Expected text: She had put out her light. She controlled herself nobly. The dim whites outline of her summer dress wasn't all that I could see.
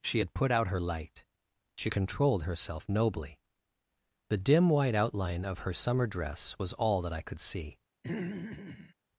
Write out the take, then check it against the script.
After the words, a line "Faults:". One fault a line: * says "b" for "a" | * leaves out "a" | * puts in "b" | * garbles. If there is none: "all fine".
She had put out her light. She controlled herself nobly. The dim white outline of her summer dress was all that I could see.
Faults:
* says "white" for "whites"
* says "was" for "wasn't"